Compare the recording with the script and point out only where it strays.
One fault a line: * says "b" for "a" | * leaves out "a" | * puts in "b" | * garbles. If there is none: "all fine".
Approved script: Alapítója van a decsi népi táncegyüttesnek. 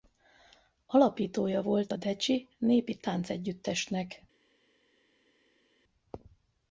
* says "volt" for "van"